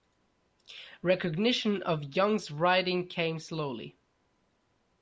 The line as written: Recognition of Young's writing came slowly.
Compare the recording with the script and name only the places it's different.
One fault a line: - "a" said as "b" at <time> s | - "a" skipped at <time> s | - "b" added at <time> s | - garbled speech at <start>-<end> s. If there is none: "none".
none